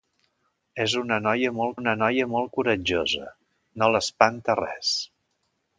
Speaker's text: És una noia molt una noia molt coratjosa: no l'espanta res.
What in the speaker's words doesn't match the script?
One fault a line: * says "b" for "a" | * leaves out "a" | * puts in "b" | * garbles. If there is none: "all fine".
all fine